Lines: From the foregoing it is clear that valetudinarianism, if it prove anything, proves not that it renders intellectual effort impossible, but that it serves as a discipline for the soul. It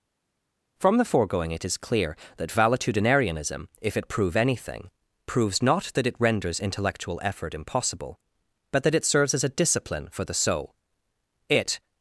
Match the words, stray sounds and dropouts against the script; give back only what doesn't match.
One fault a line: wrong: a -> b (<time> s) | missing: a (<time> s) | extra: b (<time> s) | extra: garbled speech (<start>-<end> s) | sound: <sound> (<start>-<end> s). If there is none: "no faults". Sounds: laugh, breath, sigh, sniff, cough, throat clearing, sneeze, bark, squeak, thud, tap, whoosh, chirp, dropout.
no faults